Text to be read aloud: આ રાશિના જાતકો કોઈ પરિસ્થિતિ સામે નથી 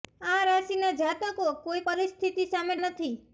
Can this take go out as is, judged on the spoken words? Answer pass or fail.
pass